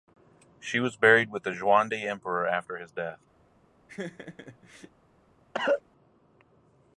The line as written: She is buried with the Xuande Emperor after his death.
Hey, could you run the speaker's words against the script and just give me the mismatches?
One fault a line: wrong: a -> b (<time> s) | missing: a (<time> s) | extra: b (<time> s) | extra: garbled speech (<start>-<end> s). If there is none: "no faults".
wrong: is -> was (0.8 s)